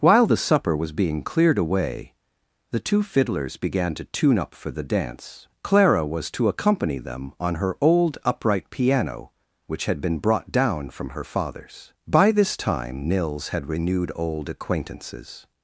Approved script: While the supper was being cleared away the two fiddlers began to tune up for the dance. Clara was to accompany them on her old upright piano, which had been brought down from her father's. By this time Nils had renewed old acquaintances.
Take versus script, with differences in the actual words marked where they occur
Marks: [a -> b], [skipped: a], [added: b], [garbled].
While the supper was being cleared away the two fiddlers began to tune up for the dance. Clara was to accompany them on her old upright piano, which had been brought down from her father's. By this time Nils had renewed old acquaintances.